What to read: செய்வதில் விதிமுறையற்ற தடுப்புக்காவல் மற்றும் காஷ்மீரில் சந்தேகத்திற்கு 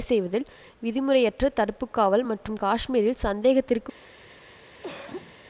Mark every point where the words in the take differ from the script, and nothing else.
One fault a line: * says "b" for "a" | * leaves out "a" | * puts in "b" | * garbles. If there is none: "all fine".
all fine